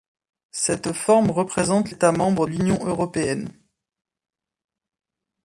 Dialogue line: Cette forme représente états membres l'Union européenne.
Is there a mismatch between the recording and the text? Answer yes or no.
no